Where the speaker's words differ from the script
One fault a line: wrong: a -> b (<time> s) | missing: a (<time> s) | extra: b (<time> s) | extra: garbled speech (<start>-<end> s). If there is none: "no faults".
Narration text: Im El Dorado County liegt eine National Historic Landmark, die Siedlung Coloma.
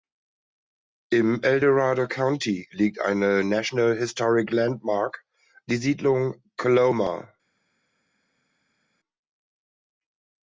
no faults